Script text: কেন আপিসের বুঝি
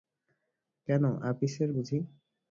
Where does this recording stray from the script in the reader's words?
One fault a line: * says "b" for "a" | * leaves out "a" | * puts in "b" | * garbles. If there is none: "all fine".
all fine